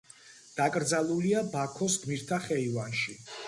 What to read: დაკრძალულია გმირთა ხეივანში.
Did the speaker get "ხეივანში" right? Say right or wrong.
right